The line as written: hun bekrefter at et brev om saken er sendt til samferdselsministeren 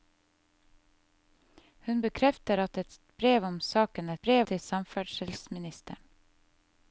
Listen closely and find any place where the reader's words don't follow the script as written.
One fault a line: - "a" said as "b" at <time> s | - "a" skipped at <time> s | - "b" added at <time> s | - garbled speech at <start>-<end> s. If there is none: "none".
- "sendt" said as "brev" at 4.2 s